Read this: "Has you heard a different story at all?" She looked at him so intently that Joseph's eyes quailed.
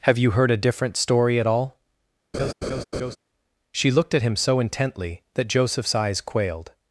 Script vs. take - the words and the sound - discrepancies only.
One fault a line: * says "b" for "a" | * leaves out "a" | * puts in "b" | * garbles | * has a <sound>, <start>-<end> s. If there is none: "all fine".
* says "Have" for "Has"
* has a laugh, 2.3-3.2 s